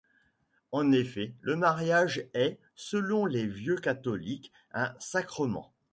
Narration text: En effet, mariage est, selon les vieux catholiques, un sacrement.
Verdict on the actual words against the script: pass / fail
fail